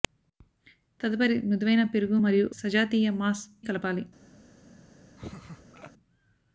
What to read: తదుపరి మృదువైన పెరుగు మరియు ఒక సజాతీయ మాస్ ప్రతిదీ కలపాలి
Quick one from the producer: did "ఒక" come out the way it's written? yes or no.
no